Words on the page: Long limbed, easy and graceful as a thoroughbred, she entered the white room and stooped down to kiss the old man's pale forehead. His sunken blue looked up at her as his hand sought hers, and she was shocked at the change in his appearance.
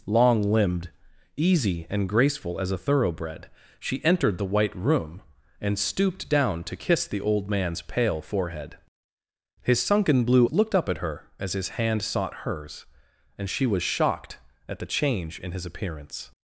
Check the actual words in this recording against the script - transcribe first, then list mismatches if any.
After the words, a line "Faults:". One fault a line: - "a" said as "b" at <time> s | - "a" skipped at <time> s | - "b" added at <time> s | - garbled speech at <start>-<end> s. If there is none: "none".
Long limbed, easy and graceful as a thoroughbred, she entered the white room and stooped down to kiss the old man's pale forehead. His sunken blue looked up at her as his hand sought hers, and she was shocked at the change in his appearance.
Faults:
none